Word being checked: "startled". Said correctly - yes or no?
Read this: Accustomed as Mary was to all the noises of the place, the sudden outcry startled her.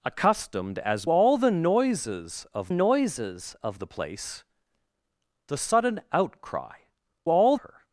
no